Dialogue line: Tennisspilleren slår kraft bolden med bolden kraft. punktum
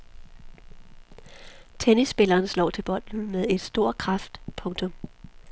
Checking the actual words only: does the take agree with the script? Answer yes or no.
no